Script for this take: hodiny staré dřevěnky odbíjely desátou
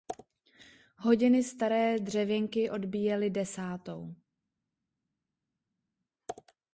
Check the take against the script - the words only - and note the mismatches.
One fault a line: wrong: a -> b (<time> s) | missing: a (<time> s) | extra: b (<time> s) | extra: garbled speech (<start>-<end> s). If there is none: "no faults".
no faults